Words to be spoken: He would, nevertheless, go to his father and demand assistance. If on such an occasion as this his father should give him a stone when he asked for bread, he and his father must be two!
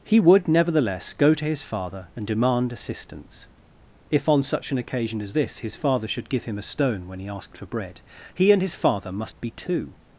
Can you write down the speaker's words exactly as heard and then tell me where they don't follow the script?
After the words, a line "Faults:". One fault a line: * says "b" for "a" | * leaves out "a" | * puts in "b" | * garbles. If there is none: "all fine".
He would, nevertheless, go to his father and demand assistance. If on such an occasion as this his father should give him a stone when he asked for bread, he and his father must be two!
Faults:
all fine